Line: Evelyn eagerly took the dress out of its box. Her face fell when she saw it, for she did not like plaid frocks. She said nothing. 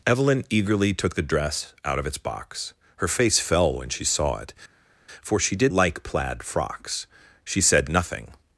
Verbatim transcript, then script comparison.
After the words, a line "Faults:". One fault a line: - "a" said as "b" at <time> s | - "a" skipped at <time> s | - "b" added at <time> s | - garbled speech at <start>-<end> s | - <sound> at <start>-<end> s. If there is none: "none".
Evelyn eagerly took the dress out of its box. Her face fell when she saw it, for she did like plaid frocks. She said nothing.
Faults:
- "not" skipped at 5.7 s